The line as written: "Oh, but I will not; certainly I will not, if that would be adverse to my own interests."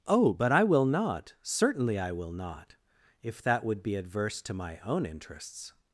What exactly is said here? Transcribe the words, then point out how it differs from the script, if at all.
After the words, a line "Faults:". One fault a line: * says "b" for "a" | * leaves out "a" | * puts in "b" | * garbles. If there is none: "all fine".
"Oh, but I will not; certainly I will not, if that would be adverse to my own interests."
Faults:
all fine